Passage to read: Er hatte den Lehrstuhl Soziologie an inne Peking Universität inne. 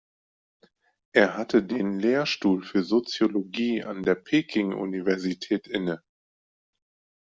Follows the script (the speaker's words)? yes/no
no